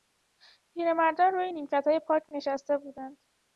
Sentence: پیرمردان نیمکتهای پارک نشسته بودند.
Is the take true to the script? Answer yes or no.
no